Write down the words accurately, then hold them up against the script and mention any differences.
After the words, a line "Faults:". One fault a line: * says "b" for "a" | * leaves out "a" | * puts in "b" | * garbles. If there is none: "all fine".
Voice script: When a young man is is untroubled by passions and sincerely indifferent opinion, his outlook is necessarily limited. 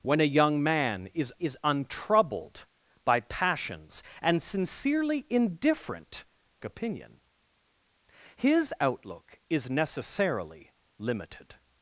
When a young man is is untroubled by passions and sincerely indifferent opinion, his outlook is necessarily limited.
Faults:
all fine